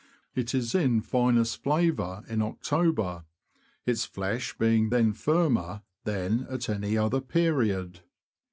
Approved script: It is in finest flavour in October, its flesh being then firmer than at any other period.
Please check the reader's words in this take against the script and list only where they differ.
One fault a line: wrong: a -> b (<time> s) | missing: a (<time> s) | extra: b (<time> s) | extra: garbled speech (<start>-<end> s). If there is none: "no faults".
no faults